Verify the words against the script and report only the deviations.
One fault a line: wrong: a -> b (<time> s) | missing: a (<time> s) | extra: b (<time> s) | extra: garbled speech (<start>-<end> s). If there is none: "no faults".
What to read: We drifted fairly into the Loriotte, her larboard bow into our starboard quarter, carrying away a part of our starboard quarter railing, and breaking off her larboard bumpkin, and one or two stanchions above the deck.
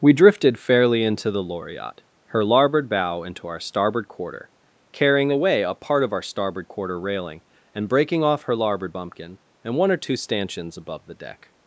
no faults